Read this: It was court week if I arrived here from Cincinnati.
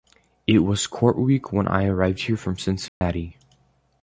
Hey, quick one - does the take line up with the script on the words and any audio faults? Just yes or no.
no